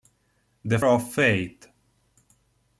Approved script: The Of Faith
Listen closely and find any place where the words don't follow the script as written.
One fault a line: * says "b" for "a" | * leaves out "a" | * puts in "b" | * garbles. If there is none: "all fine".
all fine